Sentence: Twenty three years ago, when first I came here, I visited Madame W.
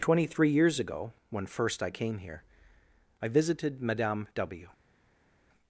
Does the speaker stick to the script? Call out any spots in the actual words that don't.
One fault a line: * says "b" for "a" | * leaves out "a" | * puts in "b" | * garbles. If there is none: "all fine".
all fine